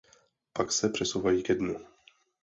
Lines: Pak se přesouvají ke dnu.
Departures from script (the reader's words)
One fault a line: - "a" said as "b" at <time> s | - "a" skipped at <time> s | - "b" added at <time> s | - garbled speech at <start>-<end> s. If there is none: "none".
none